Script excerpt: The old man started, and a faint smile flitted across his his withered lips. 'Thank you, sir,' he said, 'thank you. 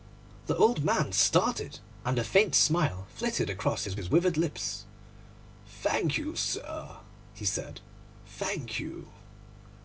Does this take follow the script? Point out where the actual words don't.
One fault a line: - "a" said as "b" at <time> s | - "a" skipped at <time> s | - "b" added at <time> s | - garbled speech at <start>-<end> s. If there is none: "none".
none